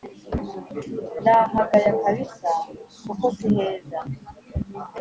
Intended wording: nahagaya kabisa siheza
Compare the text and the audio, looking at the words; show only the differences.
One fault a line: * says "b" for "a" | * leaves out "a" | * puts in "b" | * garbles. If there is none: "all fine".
* puts in "kuko"